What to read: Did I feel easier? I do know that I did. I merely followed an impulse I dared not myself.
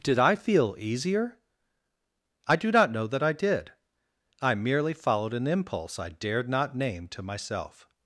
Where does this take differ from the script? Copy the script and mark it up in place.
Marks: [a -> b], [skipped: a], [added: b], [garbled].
Did I feel easier? I do [added: not] know that I did. I merely followed an impulse I dared not [added: name to] myself.